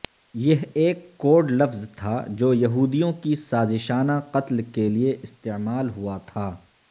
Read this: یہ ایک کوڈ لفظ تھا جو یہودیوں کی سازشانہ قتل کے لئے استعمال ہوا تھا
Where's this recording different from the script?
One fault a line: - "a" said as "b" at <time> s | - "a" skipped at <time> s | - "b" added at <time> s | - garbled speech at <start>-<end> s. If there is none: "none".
none